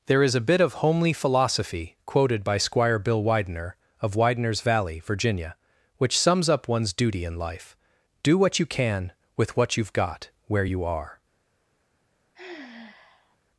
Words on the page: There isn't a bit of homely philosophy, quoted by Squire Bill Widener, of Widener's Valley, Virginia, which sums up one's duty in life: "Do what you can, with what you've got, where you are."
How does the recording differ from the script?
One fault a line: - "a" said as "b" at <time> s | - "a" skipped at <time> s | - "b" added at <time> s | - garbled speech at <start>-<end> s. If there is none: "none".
- "isn't" said as "is" at 0.2 s